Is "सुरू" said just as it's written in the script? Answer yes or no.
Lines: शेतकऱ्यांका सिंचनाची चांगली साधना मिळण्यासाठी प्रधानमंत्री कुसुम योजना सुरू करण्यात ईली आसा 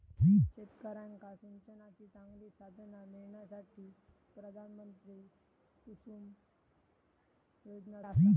no